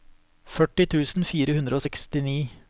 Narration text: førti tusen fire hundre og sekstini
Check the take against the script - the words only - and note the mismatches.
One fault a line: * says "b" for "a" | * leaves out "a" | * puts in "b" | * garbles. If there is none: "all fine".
all fine